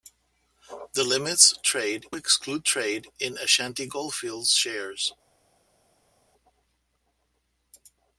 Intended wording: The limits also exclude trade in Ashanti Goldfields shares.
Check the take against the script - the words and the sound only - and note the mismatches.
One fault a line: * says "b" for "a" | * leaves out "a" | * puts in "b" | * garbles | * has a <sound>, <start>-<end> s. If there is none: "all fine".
* says "trade" for "also"